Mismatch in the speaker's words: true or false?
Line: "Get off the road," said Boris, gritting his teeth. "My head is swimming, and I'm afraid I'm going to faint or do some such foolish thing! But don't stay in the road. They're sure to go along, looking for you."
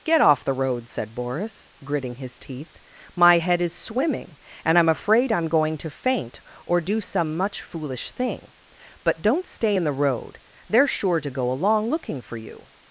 true